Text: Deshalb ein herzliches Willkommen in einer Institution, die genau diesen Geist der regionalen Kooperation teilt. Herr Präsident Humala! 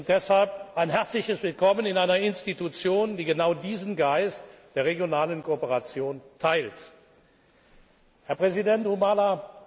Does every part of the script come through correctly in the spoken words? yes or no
yes